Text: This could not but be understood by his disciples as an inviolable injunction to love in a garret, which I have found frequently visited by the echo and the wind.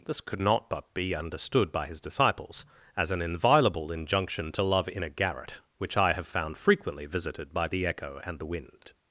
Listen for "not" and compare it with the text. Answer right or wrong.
right